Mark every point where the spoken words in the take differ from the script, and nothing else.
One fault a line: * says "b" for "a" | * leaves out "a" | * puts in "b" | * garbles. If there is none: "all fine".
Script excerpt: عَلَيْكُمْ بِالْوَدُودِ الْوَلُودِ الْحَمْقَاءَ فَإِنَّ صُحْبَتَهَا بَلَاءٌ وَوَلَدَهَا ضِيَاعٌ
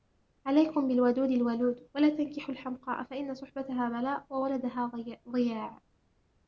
* puts in "وَلَا تَنْكِحُوا"